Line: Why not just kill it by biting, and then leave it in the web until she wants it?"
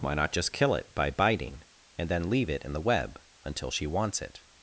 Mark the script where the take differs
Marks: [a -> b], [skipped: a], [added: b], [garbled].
Why not just kill it by biting, and then leave it in the web until she wants it?"